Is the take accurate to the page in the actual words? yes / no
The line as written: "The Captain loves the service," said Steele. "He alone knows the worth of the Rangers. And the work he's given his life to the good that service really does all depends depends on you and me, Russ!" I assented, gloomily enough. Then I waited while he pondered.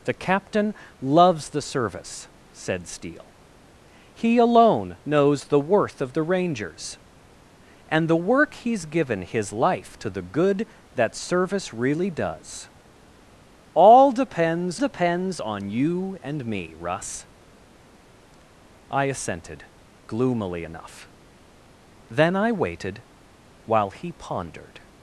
yes